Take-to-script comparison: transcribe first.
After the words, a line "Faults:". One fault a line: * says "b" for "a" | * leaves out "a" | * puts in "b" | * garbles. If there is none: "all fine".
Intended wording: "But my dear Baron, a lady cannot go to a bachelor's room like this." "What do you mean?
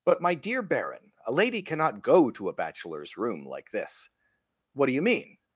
"But my dear Baron, a lady cannot go to a bachelor's room like this." "What do you mean?
Faults:
all fine